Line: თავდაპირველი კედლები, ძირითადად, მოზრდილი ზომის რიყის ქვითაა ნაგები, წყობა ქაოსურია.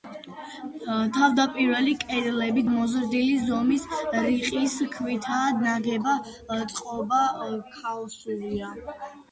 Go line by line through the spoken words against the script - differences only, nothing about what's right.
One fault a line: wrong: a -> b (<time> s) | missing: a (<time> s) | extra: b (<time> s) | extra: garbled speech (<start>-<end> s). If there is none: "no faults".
missing: ძირითადად (2.6 s)